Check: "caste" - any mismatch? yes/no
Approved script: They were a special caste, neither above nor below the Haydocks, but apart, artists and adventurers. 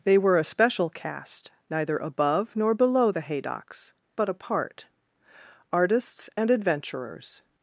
no